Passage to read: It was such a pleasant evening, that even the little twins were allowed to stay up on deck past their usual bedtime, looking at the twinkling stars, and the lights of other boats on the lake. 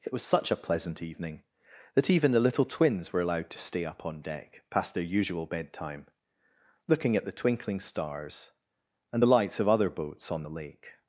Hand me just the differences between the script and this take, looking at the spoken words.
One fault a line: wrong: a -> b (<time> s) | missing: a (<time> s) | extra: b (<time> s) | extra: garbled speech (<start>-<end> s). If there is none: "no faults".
no faults